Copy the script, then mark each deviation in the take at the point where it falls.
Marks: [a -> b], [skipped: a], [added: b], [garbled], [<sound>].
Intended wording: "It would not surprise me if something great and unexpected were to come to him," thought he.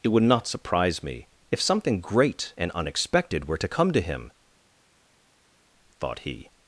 "It would not surprise me if something great and unexpected were to come to him," thought he.